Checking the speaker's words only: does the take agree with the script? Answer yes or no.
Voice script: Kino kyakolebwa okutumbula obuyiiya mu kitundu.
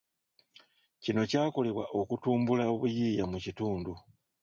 yes